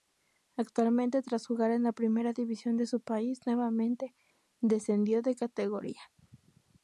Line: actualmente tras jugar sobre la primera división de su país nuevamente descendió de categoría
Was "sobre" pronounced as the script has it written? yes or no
no